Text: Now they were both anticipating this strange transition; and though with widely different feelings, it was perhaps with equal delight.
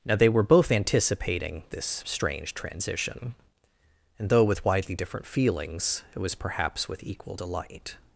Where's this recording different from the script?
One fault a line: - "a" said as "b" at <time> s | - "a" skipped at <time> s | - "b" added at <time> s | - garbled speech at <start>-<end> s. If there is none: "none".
none